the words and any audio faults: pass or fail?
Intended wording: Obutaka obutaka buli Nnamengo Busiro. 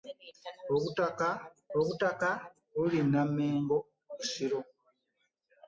pass